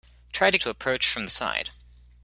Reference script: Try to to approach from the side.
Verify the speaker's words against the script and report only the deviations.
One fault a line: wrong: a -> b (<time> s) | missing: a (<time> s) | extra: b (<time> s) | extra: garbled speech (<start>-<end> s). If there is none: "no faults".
no faults